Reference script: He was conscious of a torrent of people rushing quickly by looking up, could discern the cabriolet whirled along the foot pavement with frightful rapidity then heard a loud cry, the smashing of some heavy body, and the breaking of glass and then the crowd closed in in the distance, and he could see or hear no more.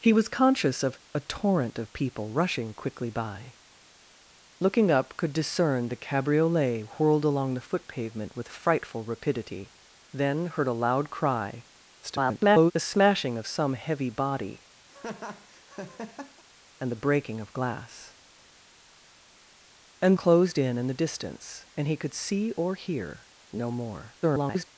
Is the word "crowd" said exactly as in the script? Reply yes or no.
no